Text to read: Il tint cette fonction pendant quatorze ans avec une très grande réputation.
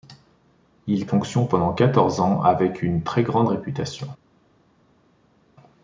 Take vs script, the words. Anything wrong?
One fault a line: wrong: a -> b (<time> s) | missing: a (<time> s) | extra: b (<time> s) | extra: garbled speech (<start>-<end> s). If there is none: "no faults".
missing: tint cette (1.1 s)